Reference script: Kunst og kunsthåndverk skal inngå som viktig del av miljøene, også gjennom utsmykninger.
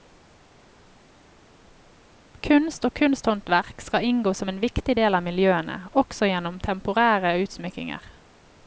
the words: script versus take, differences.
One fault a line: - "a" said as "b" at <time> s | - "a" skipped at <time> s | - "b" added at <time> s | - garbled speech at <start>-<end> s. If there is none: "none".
- "en" added at 4.5 s
- "temporære" added at 6.6 s